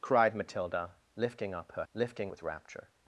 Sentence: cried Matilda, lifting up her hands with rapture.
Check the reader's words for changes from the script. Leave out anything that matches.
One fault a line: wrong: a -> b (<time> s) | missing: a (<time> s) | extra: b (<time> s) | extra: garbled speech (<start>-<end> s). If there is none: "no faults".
wrong: hands -> lifting (1.9 s)